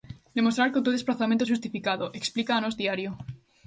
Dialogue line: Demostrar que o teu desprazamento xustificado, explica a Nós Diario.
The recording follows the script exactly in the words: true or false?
true